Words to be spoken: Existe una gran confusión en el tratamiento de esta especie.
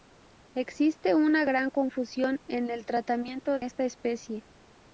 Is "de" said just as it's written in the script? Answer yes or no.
no